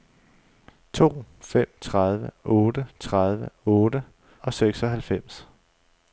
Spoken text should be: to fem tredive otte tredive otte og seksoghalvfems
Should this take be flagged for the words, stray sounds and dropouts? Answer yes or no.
no